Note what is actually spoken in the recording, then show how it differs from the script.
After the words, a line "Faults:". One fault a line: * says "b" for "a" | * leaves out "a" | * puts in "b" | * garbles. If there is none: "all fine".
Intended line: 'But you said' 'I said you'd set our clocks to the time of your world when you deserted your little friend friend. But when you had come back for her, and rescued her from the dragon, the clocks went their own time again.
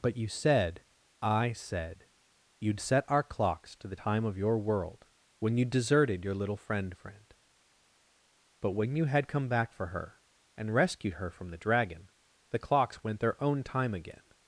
'But you said' 'I said you'd set our clocks to the time of your world when you deserted your little friend friend. But when you had come back for her, and rescued her from the dragon, the clocks went their own time again.
Faults:
all fine